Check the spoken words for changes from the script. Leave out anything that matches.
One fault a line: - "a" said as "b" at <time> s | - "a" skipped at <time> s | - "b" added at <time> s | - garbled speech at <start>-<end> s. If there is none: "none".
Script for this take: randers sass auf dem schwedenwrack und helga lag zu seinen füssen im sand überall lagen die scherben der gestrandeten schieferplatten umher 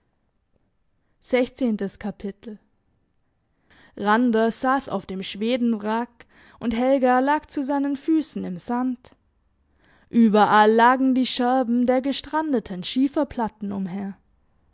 none